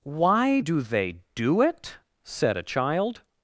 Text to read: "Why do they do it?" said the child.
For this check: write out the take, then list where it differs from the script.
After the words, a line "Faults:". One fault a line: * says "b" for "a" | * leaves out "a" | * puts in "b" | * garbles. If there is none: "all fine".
"Why do they do it?" said a child.
Faults:
* says "a" for "the"